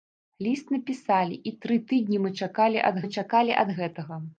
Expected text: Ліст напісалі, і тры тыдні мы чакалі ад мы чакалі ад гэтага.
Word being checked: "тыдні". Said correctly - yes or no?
yes